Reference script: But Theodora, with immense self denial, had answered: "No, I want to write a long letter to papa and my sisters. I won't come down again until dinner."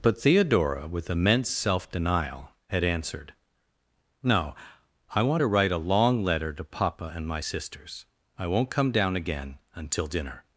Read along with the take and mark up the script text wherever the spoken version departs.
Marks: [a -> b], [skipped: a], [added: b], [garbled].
But Theodora, with immense self denial, had answered: "No, I want to write a long letter to papa and my sisters. I won't come down again until dinner."